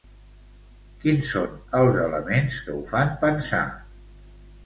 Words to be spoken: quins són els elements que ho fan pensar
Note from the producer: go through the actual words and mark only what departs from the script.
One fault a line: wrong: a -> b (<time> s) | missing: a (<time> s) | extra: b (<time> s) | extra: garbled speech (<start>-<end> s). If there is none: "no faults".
no faults